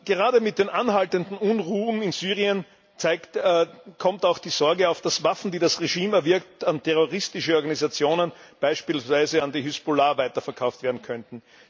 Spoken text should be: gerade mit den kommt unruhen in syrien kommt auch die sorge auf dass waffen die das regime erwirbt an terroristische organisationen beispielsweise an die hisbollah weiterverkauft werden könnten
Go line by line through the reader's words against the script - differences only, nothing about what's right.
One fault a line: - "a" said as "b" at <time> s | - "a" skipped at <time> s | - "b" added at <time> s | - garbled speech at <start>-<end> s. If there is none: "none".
- "kommt" said as "anhaltenden" at 0.7 s